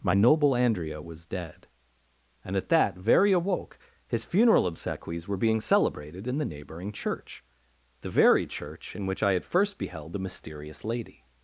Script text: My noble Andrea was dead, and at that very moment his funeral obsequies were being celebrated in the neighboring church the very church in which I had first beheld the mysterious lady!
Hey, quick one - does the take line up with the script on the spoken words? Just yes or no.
no